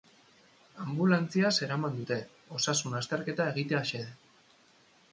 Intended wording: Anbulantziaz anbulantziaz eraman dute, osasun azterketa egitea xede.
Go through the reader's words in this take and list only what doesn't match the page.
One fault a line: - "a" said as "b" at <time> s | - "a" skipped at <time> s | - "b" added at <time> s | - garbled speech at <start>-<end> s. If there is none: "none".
- "anbulantziaz" skipped at 1.5 s